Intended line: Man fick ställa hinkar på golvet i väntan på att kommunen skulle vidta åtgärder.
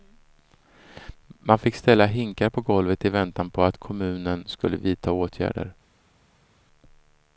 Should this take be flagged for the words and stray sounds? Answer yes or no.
no